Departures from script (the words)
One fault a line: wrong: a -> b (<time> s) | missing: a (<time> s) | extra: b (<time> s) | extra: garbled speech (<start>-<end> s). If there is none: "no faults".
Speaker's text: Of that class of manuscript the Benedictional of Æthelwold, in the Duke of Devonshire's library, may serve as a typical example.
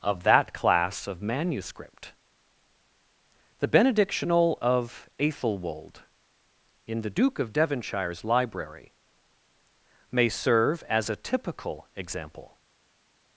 no faults